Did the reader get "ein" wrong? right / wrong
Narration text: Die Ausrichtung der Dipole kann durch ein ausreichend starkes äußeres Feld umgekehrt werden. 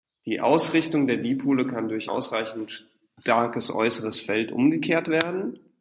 wrong